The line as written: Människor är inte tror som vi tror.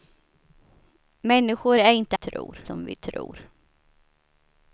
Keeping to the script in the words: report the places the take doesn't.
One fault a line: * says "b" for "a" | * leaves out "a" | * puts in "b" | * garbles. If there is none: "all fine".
all fine